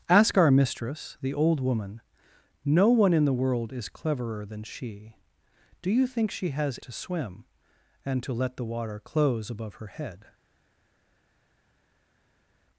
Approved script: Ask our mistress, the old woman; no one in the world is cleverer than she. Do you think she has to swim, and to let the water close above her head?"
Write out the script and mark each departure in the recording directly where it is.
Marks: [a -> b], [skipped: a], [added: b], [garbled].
Ask our mistress, the old woman; no one in the world is cleverer than she. Do you think she has to swim, and to let the water close above her head?"